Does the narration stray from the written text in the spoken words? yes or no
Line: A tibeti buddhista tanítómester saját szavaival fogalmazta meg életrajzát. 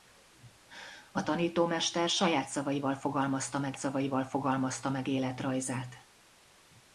yes